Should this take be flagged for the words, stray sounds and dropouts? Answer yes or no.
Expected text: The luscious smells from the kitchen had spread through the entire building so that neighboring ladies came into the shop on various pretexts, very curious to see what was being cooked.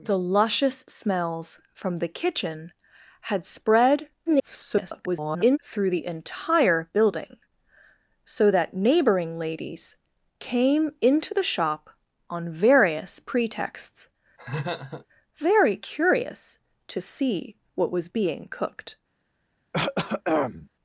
yes